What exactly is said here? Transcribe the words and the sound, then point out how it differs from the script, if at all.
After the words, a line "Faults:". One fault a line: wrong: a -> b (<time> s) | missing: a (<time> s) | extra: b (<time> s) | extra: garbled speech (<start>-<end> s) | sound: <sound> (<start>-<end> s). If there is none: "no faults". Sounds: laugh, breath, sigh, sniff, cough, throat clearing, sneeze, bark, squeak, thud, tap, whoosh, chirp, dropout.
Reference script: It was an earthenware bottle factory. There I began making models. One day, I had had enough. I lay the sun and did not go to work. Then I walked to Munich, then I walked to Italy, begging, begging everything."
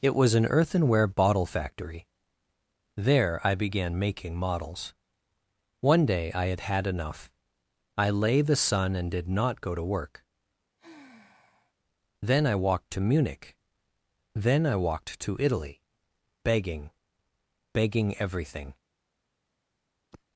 It was an earthenware bottle factory. There I began making models. One day, I had had enough. I lay the sun and did not go to work. Then I walked to Munich, then I walked to Italy, begging, begging everything."
Faults:
sound: sigh (10.8-11.7 s)
sound: sigh (20.1-20.2 s)